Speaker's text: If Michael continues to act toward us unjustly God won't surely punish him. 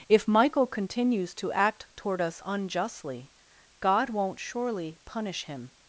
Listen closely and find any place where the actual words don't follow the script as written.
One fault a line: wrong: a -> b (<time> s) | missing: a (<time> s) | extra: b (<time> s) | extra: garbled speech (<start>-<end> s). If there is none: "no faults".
no faults